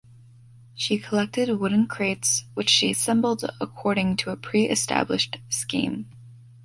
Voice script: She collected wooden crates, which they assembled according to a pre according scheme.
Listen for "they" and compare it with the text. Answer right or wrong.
wrong